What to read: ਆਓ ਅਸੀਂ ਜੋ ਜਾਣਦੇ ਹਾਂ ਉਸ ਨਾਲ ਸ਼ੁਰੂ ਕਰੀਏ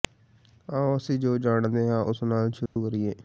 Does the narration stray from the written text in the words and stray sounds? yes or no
yes